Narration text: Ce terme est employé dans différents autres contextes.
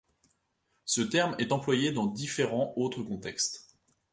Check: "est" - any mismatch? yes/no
no